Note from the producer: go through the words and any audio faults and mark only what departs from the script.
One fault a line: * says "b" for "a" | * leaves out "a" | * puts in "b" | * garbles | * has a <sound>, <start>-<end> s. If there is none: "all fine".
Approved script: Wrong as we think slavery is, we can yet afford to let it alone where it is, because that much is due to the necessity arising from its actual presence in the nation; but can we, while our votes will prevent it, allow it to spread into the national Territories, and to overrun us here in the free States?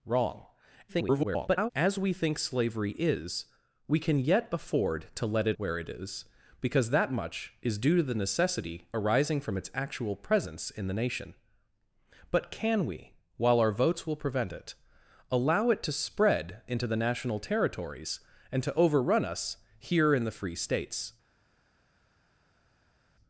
* garbles
* leaves out "alone"